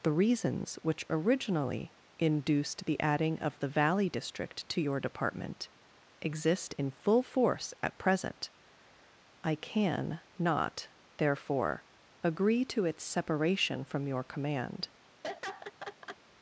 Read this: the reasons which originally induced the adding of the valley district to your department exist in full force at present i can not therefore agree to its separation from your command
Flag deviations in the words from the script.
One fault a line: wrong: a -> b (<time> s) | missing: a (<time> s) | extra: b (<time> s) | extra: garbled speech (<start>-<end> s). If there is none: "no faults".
no faults